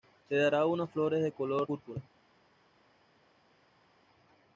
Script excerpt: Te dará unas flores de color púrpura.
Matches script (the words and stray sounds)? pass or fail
pass